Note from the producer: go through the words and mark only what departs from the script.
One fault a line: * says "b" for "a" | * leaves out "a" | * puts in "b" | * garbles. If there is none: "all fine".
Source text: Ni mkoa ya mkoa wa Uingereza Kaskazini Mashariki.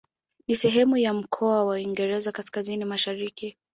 * says "sehemu" for "mkoa"